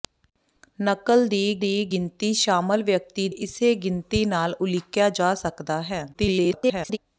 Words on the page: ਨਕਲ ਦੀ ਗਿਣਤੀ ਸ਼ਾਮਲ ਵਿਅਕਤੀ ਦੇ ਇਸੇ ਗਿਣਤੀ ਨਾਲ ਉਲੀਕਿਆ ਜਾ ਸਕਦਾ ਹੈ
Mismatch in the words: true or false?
true